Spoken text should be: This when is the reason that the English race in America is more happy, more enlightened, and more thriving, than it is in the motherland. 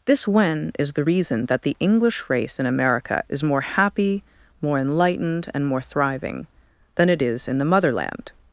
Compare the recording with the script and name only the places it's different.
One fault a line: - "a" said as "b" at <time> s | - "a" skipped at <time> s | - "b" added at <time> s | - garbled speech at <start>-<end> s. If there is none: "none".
none